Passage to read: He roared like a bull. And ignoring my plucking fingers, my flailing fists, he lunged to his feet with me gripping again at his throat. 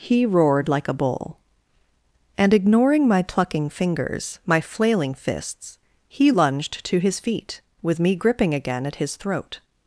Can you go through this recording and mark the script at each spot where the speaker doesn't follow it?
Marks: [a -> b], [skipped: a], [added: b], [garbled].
He roared like a bull. And ignoring my plucking fingers, my flailing fists, he lunged to his feet with me gripping again at his throat.